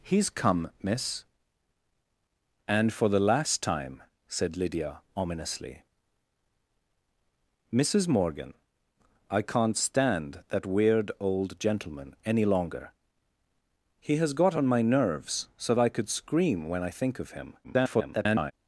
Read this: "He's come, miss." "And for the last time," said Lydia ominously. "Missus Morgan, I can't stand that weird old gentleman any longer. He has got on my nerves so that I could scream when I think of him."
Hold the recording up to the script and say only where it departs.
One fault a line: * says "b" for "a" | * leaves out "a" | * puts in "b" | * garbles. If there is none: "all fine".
* leaves out "that"
* garbles